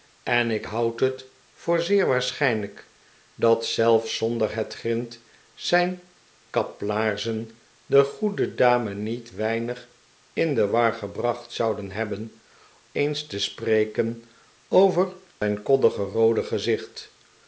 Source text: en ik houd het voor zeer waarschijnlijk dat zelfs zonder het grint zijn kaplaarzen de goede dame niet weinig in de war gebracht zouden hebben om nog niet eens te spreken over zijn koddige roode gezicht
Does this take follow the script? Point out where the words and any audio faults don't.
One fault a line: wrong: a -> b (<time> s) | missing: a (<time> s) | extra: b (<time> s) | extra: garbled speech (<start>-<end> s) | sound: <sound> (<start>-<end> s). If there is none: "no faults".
missing: om nog niet (12.4 s)
sound: dropout (15.3-15.4 s)